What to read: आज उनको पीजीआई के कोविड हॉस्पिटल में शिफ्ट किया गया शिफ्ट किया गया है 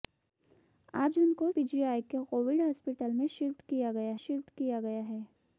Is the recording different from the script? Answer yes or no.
no